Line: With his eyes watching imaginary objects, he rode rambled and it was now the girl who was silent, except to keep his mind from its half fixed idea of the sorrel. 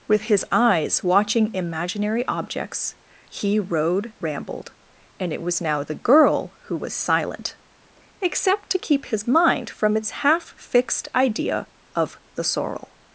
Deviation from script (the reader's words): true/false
false